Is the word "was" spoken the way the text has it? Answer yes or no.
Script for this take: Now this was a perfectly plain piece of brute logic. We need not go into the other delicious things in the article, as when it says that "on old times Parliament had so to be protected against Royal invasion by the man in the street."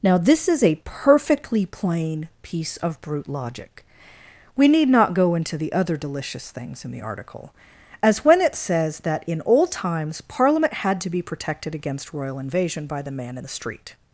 no